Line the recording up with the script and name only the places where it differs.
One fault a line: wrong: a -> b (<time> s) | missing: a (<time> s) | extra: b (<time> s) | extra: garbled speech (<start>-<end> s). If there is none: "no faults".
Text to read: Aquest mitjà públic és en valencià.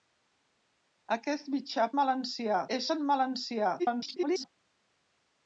wrong: públic -> valencià (2.0 s)
extra: garbled speech (3.8-4.5 s)